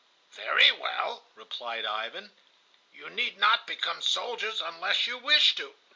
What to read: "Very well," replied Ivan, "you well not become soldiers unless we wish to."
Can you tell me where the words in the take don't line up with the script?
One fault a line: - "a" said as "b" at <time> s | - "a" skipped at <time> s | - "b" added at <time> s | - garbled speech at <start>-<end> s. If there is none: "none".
- "well" said as "need" at 3.1 s
- "we" said as "you" at 5.1 s